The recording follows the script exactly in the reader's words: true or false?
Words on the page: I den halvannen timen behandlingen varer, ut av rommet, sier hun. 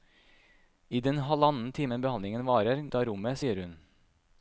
true